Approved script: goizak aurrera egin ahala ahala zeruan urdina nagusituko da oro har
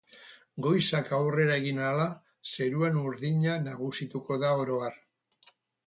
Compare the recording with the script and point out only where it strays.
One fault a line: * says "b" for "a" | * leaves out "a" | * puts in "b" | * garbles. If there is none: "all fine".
* leaves out "ahala"